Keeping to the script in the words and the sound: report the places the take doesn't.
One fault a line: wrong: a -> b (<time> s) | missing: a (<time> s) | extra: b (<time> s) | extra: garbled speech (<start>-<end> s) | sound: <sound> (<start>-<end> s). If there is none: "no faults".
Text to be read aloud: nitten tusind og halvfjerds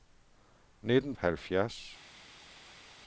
missing: tusind og (1.1 s)